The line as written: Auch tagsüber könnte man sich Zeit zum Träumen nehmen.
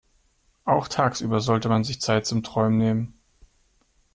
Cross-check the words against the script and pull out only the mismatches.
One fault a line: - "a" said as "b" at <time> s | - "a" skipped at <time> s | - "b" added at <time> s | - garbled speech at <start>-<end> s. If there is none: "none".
- "könnte" said as "sollte" at 1.4 s